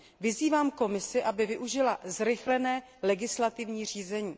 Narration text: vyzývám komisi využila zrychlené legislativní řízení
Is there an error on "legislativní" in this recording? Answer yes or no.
no